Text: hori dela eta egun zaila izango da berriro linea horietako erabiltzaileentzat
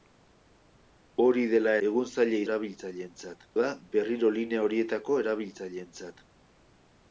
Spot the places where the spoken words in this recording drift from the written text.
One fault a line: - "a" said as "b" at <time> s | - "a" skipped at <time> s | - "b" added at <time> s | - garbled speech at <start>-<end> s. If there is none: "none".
- "eta" skipped at 1.7 s
- "izango" said as "erabiltzaileentzat" at 2.5 s